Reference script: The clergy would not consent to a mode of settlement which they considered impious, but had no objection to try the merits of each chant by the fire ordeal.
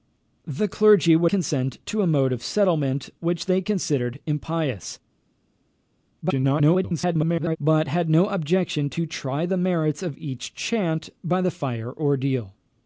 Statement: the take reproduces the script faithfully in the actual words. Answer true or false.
false